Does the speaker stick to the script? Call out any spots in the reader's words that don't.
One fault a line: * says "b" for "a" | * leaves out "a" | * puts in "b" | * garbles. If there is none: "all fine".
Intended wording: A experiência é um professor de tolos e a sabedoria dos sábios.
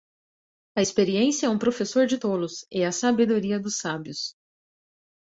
all fine